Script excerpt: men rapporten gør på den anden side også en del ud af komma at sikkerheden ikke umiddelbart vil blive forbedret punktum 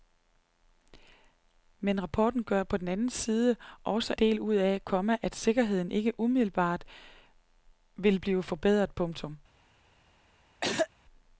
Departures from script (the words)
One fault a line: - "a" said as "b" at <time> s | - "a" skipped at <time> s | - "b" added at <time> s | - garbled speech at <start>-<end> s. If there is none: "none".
- "en" skipped at 4.1 s